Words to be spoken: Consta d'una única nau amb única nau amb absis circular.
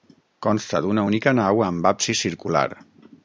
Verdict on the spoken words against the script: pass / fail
fail